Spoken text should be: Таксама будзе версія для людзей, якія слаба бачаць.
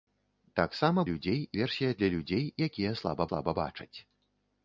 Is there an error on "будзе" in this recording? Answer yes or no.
yes